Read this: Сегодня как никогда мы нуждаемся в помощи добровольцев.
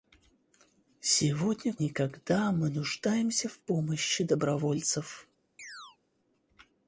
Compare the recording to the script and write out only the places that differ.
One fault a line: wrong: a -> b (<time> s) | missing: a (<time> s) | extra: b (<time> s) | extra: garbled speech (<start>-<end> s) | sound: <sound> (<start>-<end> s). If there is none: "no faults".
missing: как (1.8 s)
sound: chirp (5.6-6.0 s)